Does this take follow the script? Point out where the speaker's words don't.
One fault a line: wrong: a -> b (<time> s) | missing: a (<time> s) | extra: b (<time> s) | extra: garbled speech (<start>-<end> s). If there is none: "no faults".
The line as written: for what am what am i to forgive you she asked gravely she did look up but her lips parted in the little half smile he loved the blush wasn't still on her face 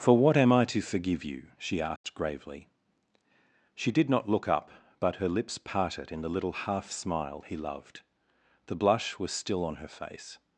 missing: what am (0.5 s)
extra: not (4.1 s)
wrong: wasn't -> was (9.2 s)